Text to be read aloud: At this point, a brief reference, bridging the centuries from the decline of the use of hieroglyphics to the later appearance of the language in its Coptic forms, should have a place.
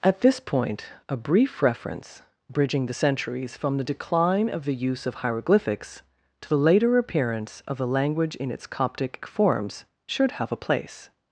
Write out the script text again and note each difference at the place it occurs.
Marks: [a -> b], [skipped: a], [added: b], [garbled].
At this point, a brief reference, bridging the centuries from the decline of the use of hieroglyphics to the later appearance of the language in its Coptic forms, should have a place.